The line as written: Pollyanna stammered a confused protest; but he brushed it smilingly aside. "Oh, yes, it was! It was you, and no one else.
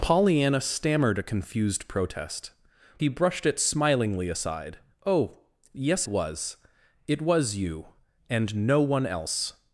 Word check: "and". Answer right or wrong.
right